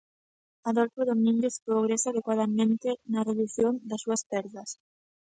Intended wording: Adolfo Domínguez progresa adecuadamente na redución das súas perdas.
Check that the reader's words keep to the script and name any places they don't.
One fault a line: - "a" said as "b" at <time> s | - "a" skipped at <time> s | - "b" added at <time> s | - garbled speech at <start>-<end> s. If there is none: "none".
none